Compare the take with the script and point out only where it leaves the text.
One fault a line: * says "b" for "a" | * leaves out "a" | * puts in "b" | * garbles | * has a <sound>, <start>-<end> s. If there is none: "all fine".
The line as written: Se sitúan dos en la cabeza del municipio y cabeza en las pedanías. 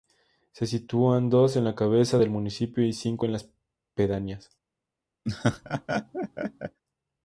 * says "cinco" for "cabeza"
* has a laugh, 5.3-6.8 s